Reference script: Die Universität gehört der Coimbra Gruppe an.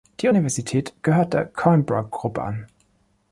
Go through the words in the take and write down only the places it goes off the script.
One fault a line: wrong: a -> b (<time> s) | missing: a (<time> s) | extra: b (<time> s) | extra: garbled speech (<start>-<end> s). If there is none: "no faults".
no faults